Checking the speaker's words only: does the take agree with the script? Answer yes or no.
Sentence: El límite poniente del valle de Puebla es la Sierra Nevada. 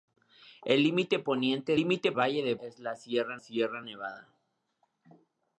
no